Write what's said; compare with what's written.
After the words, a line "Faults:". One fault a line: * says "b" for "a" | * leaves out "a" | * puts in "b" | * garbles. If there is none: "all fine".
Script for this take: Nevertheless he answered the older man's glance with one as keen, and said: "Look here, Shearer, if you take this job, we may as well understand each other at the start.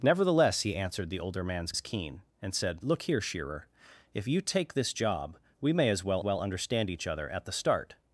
Nevertheless he answered the older man's as keen, and said: "Look here, Shearer, if you take this job, we may as well well understand each other at the start.
Faults:
* leaves out "glance with one"
* puts in "well"